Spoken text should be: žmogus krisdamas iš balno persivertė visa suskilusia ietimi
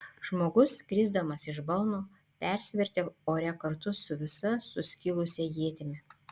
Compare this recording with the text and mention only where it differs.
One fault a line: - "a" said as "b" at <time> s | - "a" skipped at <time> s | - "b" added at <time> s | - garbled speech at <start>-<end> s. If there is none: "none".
- "ore kartu su" added at 3.3 s